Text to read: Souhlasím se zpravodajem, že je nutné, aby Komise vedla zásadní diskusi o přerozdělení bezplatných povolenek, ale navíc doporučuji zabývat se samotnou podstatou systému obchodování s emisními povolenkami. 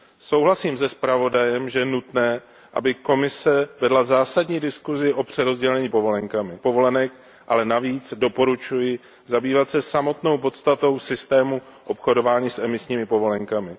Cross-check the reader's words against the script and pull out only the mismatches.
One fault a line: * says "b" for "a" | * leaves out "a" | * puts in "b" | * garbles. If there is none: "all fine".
* says "povolenkami" for "bezplatných"